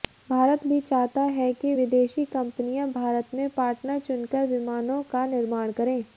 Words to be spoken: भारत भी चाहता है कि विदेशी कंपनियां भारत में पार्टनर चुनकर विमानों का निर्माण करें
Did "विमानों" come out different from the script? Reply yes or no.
no